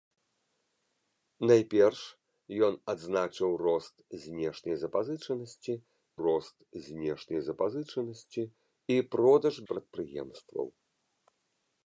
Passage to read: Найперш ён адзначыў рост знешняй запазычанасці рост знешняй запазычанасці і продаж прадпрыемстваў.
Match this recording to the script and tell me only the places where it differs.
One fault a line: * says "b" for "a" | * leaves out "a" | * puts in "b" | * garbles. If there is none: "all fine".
all fine